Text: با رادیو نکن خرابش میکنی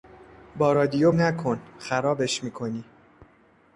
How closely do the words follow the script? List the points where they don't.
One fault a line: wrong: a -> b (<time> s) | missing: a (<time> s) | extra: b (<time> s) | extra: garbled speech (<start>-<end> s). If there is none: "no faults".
no faults